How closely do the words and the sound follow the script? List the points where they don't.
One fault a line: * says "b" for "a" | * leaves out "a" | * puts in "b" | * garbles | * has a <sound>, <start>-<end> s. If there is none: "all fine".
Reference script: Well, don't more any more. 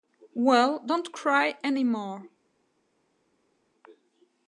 * says "cry" for "more"